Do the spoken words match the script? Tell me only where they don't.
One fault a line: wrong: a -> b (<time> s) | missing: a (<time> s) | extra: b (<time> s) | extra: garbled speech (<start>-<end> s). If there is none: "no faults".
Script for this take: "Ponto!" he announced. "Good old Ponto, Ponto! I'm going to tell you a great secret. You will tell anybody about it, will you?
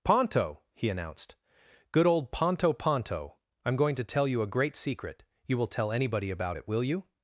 no faults